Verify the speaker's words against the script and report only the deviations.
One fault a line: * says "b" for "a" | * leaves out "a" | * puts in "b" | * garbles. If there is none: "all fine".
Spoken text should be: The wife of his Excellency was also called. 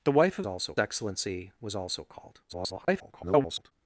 * says "also" for "his"
* garbles